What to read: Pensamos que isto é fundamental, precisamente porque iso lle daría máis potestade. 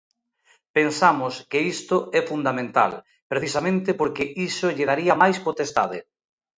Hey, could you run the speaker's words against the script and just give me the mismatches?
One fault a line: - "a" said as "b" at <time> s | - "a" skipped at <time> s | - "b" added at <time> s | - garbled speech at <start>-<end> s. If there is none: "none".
none